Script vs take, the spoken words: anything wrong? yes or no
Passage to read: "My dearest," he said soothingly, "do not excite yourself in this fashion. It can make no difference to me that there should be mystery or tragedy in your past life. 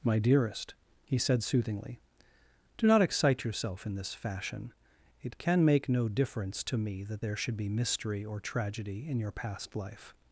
no